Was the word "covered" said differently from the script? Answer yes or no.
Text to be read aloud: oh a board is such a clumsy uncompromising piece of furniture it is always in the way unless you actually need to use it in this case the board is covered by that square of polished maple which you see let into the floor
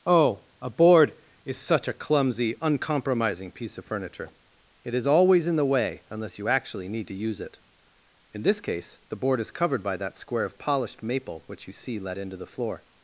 no